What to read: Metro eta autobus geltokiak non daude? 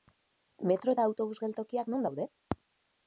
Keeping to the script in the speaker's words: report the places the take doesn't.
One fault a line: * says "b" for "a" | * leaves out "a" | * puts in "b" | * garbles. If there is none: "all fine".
all fine